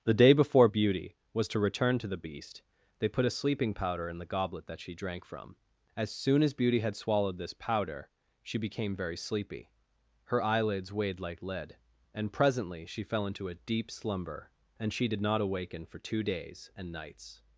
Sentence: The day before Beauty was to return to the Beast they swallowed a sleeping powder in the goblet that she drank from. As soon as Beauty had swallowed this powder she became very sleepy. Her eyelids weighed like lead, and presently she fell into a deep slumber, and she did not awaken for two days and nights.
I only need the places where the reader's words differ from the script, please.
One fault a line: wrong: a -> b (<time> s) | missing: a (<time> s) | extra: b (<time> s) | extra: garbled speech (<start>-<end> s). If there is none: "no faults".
wrong: swallowed -> put (3.1 s)